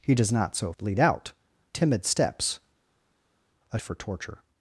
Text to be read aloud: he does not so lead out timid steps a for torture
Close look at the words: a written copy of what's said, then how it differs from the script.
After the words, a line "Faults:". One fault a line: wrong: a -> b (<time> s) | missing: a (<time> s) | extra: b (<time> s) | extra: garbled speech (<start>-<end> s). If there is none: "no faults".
he does not so lead out timid steps a for torture
Faults:
no faults